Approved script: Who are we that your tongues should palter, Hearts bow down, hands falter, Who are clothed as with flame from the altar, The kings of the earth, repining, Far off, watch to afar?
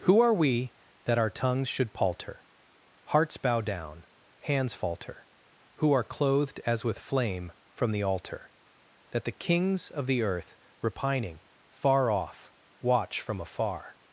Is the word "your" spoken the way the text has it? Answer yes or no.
no